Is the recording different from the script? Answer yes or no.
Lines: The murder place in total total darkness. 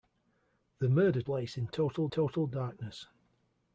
no